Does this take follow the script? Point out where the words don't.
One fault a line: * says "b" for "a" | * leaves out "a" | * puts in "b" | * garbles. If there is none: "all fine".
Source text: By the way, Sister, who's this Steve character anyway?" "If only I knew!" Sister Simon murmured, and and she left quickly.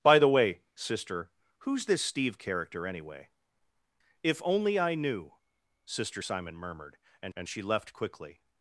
all fine